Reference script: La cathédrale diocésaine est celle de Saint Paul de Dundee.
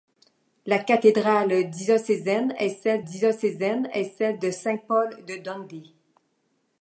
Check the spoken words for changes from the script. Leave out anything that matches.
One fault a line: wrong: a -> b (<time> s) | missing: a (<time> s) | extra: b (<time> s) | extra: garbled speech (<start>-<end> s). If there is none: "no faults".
extra: diocésaine est celle (3.0 s)